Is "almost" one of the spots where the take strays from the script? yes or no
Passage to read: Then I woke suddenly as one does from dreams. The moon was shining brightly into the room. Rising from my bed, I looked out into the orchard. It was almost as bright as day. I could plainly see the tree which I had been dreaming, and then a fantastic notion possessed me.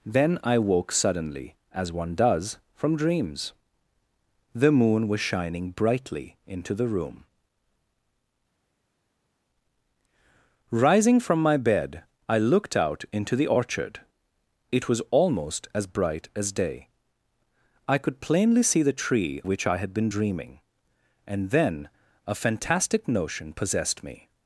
no